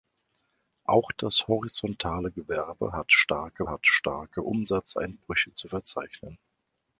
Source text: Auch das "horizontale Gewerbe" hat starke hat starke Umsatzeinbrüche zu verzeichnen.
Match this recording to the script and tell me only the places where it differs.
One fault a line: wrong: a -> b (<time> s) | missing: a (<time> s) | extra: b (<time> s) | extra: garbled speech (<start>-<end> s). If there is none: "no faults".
no faults